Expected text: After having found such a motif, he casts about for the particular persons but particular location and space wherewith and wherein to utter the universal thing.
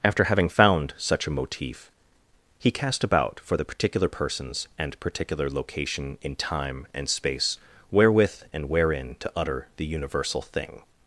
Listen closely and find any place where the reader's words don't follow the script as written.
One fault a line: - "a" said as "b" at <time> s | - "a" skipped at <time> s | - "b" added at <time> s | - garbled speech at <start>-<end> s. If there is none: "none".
- "casts" said as "cast" at 2.7 s
- "but" said as "and" at 4.8 s
- "in time" added at 6.2 s